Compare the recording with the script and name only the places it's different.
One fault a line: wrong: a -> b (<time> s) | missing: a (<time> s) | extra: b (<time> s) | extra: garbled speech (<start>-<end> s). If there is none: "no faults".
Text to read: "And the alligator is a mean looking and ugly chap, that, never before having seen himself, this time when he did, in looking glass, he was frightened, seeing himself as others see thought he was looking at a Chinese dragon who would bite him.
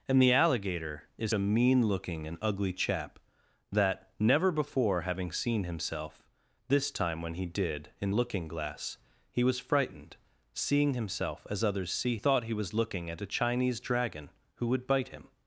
no faults